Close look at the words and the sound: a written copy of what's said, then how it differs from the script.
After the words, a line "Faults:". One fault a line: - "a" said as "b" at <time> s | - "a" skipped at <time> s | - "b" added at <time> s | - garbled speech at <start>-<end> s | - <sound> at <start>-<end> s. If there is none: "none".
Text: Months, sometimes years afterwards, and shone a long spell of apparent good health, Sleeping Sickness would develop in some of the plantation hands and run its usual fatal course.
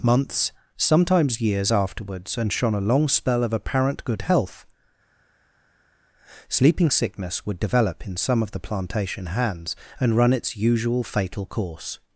Months, sometimes years afterwards, and shone a long spell of apparent good health, Sleeping Sickness would develop in some of the plantation hands and run its usual fatal course.
Faults:
none